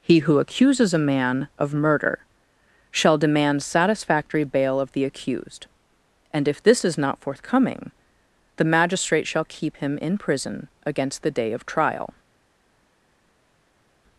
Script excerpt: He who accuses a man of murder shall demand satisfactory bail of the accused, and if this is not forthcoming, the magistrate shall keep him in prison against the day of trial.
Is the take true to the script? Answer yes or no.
yes